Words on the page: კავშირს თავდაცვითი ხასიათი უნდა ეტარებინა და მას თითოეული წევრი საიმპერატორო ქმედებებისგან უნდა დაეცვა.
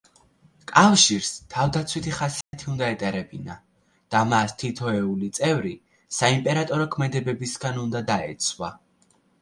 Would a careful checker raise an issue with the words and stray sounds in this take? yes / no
yes